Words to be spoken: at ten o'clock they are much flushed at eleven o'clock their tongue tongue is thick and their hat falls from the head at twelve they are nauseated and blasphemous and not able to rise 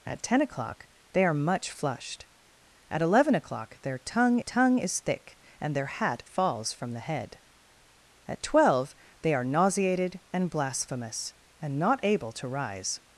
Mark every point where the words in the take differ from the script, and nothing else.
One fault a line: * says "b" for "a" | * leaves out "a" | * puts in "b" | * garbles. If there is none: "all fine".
all fine